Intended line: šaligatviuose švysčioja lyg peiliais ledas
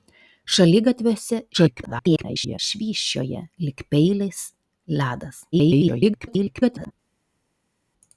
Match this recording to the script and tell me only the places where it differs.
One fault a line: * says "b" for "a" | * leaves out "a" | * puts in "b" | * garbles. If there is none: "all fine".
* garbles
* garbles